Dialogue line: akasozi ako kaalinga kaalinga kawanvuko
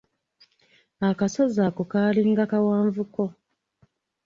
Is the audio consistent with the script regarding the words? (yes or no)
no